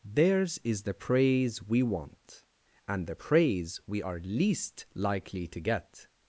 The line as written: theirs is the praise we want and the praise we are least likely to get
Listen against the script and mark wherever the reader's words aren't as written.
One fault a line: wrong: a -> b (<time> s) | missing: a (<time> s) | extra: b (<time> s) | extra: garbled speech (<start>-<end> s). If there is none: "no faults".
no faults